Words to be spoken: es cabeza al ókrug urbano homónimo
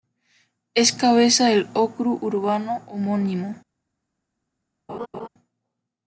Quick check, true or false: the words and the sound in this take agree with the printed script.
false